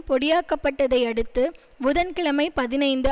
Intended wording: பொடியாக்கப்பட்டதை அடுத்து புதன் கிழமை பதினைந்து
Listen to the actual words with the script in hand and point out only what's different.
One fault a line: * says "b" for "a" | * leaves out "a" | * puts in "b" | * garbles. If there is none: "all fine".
all fine